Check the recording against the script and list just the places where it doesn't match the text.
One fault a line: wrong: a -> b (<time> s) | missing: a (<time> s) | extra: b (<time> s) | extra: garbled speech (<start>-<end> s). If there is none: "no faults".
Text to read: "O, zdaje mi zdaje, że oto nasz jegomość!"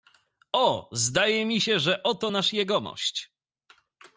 wrong: zdaje -> się (1.6 s)